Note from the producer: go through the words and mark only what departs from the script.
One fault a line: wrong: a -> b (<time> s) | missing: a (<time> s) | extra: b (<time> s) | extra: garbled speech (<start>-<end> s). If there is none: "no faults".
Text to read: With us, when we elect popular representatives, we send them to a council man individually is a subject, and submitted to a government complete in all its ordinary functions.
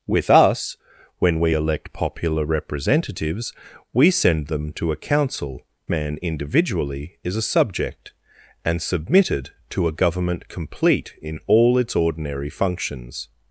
no faults